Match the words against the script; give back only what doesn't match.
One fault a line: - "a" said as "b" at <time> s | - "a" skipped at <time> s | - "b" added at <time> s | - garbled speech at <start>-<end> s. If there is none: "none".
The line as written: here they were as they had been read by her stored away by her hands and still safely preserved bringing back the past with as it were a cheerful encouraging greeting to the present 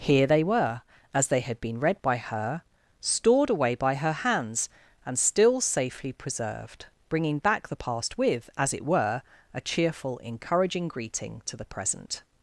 none